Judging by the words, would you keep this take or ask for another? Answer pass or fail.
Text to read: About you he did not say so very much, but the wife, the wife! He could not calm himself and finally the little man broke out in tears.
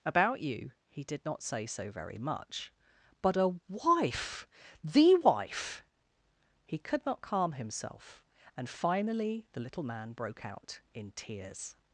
fail